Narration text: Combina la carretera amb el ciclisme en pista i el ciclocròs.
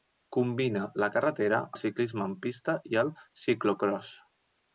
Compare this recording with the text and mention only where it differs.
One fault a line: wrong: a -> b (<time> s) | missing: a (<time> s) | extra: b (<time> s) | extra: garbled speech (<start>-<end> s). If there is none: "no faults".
missing: amb (1.6 s)